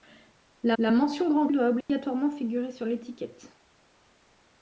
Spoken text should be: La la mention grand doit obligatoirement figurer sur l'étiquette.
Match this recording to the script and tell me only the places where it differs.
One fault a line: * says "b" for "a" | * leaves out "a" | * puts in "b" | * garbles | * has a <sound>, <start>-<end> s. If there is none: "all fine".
* has a dropout, 1.8-1.9 s